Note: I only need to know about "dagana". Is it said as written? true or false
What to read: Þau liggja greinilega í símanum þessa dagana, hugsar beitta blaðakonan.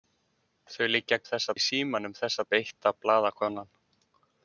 false